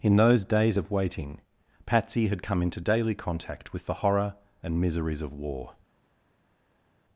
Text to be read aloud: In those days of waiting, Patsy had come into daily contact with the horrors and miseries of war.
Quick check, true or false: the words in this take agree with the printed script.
false